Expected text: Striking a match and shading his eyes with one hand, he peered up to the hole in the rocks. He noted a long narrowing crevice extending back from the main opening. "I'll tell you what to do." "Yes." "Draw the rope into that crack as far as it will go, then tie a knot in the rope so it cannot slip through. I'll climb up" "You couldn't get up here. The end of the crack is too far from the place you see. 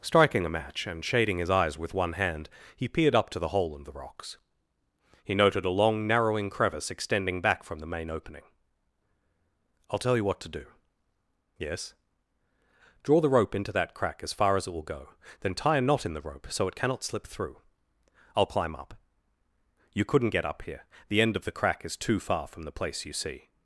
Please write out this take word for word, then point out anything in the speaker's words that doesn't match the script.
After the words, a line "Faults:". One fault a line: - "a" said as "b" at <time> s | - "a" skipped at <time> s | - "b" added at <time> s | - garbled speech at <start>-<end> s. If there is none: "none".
Striking a match and shading his eyes with one hand, he peered up to the hole in the rocks. He noted a long narrowing crevice extending back from the main opening. "I'll tell you what to do." "Yes." "Draw the rope into that crack as far as it will go, then tie a knot in the rope so it cannot slip through. I'll climb up" "You couldn't get up here. The end of the crack is too far from the place you see.
Faults:
none